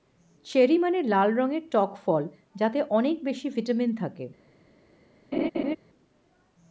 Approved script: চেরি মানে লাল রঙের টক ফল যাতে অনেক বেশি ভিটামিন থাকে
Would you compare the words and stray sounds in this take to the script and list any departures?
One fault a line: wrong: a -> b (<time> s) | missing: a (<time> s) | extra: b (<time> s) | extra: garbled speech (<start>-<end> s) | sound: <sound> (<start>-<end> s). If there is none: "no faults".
sound: laugh (5.3-5.8 s)